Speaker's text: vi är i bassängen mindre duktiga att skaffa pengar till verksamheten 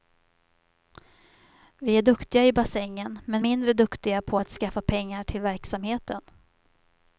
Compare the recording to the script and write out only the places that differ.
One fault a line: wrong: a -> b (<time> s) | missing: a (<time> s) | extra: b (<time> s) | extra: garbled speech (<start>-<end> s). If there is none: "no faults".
extra: duktiga (2.0 s)
extra: men (3.2 s)
extra: på (4.2 s)